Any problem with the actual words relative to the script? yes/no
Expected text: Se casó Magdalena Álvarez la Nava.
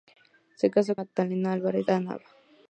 no